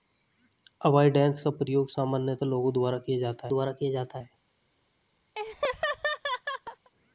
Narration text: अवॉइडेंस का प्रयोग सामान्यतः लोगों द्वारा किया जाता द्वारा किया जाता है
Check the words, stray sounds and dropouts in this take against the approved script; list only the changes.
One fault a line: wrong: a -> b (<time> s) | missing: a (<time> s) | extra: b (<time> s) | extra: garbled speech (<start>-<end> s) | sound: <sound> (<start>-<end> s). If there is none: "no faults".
sound: laugh (5.4-6.9 s)